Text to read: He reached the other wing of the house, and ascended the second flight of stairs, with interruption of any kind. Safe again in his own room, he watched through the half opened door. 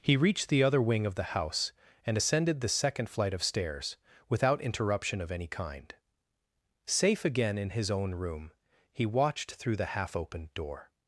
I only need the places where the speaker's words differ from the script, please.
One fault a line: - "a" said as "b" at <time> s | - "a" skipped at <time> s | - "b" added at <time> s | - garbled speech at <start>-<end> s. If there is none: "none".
- "with" said as "without" at 4.3 s